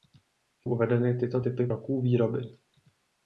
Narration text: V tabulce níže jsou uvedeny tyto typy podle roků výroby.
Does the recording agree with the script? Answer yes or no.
no